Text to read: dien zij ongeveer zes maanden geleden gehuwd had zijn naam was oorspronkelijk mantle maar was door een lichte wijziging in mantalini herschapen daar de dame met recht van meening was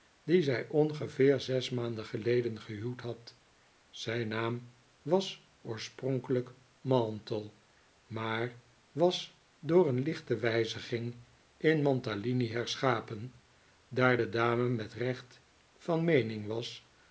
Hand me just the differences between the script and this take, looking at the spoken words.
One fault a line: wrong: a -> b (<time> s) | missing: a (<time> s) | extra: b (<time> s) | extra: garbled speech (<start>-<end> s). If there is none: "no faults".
no faults